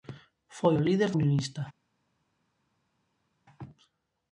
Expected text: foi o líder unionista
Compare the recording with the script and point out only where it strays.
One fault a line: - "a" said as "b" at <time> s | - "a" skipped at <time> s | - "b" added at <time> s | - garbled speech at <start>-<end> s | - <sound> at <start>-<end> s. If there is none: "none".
none